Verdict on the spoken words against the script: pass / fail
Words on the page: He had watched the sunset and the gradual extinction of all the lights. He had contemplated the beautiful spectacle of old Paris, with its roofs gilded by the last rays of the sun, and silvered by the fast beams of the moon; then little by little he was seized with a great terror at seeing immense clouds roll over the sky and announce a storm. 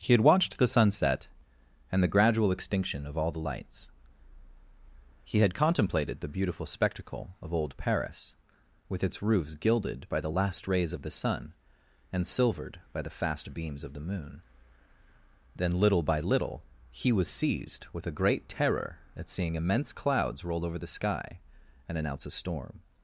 pass